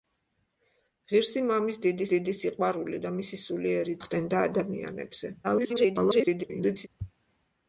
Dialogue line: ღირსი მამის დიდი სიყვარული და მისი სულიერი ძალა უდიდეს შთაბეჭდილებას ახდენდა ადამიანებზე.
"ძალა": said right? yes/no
no